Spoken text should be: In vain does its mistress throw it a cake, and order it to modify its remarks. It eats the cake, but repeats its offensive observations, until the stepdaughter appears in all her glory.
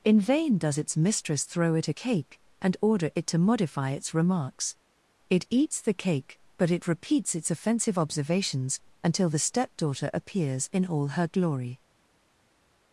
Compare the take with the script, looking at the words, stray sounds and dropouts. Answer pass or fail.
fail